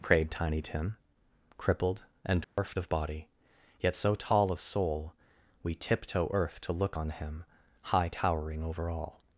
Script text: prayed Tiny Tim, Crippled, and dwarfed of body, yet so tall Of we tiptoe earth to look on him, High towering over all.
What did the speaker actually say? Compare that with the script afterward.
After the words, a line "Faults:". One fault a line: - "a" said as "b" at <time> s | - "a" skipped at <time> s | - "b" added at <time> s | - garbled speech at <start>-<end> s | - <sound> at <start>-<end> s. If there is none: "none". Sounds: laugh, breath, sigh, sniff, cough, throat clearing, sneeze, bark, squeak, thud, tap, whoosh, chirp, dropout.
prayed Tiny Tim, Crippled, and dwarfed of body, yet so tall Of soul, we tiptoe earth to look on him, High towering over all.
Faults:
- dropout at 2.4-2.6 s
- "soul" added at 4.6 s